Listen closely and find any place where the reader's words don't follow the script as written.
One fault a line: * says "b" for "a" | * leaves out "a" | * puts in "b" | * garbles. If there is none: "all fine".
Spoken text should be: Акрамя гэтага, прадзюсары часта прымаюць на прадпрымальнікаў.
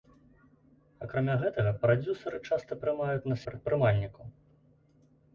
all fine